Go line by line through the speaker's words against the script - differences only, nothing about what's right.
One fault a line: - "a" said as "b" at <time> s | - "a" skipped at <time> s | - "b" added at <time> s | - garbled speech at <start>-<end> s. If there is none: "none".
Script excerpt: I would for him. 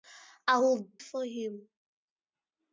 none